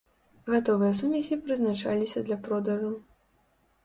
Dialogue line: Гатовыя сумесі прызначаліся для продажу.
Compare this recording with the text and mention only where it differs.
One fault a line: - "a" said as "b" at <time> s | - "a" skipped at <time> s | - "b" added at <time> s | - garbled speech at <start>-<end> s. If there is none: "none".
none